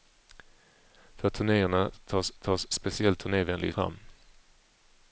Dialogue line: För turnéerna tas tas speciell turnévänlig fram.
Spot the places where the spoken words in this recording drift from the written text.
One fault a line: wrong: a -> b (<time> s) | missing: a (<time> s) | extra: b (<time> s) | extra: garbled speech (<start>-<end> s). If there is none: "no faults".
no faults